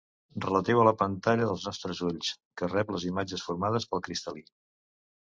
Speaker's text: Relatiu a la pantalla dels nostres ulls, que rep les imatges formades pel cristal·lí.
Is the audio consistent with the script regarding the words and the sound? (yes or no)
yes